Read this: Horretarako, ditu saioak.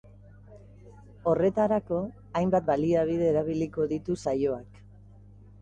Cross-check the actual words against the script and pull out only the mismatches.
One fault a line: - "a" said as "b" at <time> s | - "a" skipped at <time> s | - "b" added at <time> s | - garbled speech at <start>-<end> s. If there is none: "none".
- "hainbat baliabide erabiliko" added at 2.4 s